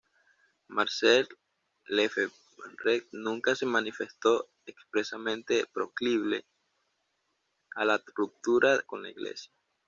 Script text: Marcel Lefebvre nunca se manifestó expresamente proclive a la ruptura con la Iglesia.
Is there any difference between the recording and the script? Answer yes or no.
no